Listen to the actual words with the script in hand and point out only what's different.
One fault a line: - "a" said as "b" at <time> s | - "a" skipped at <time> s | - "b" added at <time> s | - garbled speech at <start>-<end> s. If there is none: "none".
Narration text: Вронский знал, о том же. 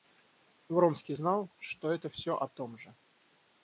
- "что это всё" added at 1.6 s